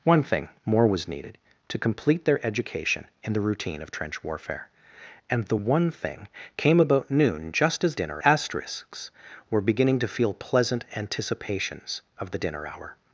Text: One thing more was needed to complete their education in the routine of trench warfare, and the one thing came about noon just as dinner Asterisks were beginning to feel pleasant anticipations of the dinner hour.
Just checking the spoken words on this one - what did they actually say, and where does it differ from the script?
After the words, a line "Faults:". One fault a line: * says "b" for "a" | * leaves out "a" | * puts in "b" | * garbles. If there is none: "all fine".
One thing more was needed to complete their education in the routine of trench warfare, and the one thing came about noon just as dinner Asterisks were beginning to feel pleasant anticipations of the dinner hour.
Faults:
all fine